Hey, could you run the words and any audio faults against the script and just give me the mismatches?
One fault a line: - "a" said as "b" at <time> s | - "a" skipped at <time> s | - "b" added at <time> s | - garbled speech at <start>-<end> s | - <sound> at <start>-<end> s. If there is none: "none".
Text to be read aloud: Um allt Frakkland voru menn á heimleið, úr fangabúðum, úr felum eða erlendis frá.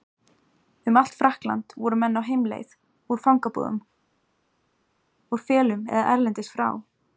none